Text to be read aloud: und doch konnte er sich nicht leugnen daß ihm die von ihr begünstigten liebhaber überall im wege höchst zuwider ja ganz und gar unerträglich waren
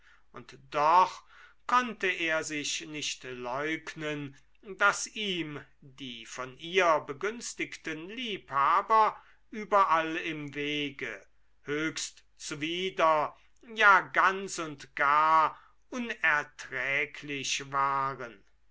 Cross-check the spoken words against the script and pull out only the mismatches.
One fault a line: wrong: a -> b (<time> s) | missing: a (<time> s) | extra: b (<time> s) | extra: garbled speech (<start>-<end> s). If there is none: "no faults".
no faults